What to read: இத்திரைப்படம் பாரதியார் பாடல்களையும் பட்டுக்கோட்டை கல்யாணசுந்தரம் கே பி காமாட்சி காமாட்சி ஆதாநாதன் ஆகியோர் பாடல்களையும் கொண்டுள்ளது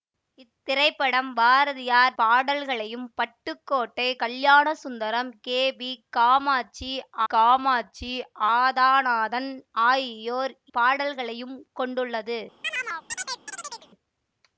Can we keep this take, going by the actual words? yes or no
yes